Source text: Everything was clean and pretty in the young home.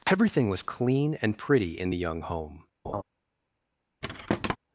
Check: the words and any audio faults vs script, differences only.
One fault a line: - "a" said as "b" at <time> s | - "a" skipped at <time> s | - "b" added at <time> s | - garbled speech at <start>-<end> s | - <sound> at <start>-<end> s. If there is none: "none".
- laugh at 2.8-3.0 s
- thud at 4.0-4.6 s